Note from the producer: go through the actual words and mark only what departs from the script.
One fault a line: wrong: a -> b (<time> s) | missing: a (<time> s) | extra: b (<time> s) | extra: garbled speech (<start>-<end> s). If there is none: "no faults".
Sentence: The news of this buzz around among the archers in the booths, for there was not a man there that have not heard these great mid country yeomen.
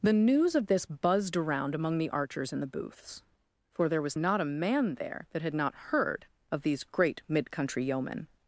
wrong: buzz -> buzzed (0.9 s)
wrong: have -> had (5.4 s)
extra: of (6.5 s)